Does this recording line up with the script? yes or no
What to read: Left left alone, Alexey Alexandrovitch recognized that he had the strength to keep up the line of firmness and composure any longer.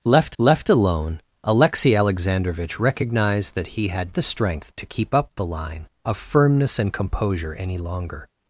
yes